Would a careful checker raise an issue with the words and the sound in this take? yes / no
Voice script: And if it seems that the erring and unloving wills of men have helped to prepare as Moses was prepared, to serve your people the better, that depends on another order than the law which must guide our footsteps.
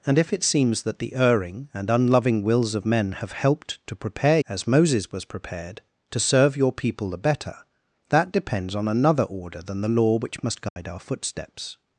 yes